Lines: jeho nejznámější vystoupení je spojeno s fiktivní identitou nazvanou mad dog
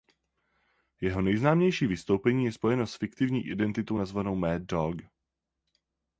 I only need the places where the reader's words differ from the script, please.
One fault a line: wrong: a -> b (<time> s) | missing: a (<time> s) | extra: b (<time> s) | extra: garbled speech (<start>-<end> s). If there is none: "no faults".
no faults